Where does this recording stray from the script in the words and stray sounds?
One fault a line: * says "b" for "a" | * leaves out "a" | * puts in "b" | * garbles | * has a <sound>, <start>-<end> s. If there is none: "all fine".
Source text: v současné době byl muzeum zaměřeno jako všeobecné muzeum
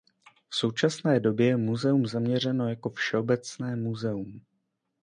* says "je" for "byl"